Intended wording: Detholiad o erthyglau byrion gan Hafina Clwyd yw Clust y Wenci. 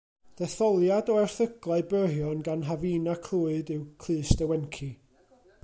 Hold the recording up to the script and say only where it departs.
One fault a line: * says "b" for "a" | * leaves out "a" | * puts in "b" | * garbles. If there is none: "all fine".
all fine